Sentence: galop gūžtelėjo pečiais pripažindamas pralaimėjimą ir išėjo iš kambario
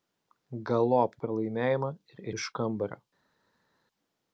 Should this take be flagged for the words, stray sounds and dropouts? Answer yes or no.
yes